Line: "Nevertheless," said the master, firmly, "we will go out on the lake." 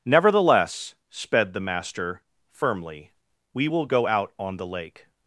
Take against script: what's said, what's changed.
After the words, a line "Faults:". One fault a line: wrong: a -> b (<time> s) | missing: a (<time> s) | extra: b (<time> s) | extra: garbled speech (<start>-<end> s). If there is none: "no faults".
"Nevertheless," sped the master, firmly, "we will go out on the lake."
Faults:
wrong: said -> sped (1.1 s)